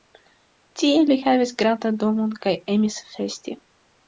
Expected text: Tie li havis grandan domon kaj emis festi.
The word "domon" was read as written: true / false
true